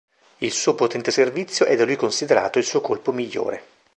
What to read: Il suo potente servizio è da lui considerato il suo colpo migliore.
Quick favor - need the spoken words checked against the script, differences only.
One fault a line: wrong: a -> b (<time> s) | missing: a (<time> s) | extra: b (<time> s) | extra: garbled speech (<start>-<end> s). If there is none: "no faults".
no faults